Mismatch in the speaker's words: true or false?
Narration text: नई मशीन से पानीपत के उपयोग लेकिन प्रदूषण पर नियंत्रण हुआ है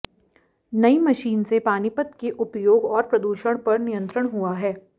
true